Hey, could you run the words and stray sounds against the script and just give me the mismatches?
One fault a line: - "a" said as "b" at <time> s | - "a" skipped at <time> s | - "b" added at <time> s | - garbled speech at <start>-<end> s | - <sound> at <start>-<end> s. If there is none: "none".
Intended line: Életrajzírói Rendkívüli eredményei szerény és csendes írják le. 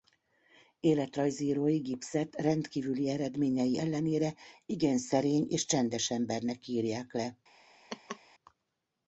- "Gibbset" added at 1.8 s
- "ellenére igen" added at 3.8 s
- "embernek" added at 6.1 s
- laugh at 7.9-8.2 s